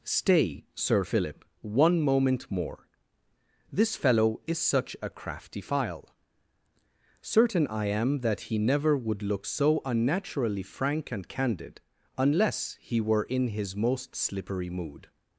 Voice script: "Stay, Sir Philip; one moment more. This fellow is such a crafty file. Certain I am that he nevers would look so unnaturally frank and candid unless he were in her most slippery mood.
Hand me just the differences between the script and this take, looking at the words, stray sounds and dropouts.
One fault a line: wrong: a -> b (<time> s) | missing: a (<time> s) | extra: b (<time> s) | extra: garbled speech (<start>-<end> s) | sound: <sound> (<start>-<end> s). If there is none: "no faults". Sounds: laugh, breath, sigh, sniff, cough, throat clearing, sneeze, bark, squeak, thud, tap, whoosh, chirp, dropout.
wrong: nevers -> never (8.6 s)
wrong: her -> his (13.5 s)